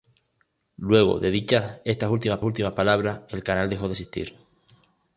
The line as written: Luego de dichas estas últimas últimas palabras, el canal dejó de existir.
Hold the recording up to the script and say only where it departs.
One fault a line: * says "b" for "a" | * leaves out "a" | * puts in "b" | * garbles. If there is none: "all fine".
all fine